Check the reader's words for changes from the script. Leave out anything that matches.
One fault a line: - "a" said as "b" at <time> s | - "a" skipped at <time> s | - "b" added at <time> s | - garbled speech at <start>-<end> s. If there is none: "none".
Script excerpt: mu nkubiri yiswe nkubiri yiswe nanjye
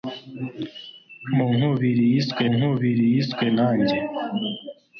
none